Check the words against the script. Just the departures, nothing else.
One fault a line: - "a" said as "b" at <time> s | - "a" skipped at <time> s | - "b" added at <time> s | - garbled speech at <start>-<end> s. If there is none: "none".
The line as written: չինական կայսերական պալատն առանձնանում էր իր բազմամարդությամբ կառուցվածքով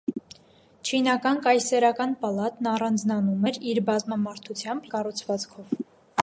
none